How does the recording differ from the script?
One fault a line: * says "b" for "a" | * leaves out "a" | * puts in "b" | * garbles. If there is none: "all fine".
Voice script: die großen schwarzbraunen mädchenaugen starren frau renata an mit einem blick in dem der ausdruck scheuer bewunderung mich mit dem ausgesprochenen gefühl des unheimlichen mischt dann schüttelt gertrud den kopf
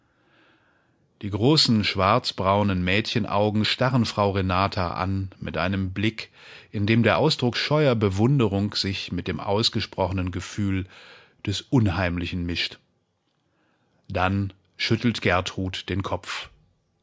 * says "sich" for "mich"